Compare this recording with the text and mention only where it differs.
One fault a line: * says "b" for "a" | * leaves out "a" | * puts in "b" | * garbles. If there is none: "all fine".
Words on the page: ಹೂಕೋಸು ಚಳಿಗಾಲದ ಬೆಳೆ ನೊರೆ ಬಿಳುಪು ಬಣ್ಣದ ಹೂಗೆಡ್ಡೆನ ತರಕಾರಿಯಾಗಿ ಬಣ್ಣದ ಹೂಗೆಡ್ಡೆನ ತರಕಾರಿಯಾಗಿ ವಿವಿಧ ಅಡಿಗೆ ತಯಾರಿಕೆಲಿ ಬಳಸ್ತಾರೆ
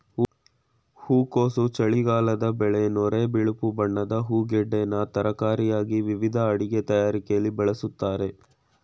* leaves out "ಬಣ್ಣದ ಹೂಗೆಡ್ಡೆನ ತರಕಾರಿಯಾಗಿ"